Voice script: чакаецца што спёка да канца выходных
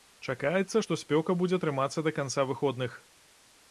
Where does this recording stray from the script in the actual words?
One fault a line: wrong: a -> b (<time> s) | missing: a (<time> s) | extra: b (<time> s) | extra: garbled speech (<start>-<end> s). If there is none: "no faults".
extra: будзе трымацца (1.4 s)